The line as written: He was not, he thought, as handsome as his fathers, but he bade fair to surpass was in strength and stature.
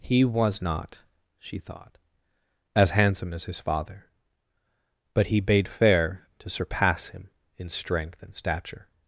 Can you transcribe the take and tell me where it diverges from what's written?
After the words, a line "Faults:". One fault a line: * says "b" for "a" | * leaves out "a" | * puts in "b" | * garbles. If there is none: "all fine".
He was not, she thought, as handsome as his father, but he bade fair to surpass him in strength and stature.
Faults:
* says "she" for "he"
* says "father" for "fathers"
* says "him" for "was"